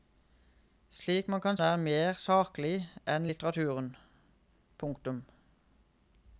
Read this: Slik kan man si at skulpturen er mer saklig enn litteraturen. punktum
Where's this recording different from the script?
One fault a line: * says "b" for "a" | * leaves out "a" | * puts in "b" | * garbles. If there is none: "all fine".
* leaves out "si at skulpturen"